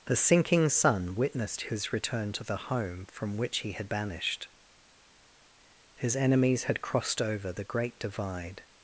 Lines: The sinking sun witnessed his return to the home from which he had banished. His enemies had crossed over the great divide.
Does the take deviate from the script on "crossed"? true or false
false